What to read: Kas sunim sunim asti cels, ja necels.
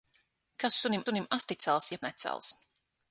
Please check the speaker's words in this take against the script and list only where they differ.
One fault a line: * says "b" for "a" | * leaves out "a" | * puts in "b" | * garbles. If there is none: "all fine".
all fine